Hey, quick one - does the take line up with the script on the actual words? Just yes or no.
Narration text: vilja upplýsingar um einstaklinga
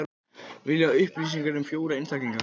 no